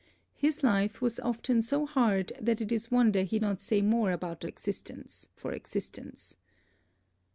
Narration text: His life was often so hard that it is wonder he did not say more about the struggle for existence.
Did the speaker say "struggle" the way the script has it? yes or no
no